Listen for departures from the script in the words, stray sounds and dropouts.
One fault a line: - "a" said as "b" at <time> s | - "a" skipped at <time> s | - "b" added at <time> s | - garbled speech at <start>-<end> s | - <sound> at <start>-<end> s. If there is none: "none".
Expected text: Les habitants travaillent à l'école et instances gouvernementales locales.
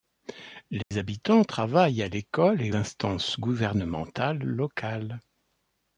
- dropout at 0.8-0.9 s